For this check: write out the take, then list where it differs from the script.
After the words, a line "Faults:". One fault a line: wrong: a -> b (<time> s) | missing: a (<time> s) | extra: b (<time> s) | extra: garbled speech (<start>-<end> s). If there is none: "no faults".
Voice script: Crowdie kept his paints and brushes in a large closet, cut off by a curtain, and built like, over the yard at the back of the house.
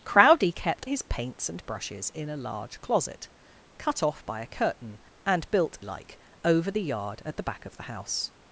Crowdie kept his paints and brushes in a large closet, cut off by a curtain, and built like, over the yard at the back of the house.
Faults:
no faults